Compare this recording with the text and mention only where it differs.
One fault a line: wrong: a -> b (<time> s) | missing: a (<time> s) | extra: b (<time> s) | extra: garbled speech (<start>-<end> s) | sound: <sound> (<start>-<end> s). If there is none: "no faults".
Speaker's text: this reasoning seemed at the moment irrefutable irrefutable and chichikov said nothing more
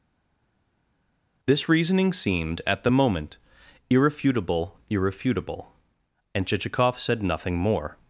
no faults